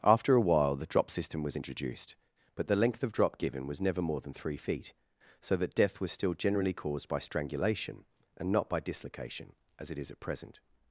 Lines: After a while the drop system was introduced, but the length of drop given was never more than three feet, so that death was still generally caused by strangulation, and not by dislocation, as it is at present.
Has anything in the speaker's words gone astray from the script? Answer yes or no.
no